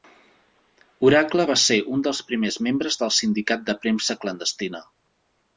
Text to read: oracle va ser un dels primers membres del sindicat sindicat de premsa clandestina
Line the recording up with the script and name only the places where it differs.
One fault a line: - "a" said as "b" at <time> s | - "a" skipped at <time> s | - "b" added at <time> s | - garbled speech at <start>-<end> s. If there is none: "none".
- "sindicat" skipped at 3.7 s